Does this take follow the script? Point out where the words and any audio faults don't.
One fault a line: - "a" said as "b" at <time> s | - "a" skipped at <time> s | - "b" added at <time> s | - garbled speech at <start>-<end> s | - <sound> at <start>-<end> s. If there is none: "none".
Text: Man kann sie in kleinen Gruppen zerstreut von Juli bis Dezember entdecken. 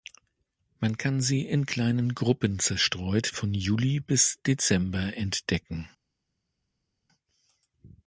none